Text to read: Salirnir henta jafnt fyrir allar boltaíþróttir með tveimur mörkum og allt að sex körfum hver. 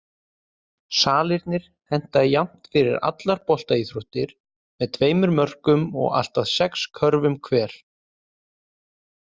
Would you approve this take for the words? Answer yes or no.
yes